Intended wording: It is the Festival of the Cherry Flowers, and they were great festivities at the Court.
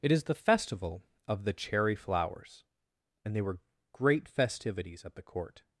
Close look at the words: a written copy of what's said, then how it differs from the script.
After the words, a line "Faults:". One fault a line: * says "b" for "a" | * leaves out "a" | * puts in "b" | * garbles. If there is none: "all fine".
It is the Festival of the Cherry Flowers, and they were great festivities at the Court.
Faults:
all fine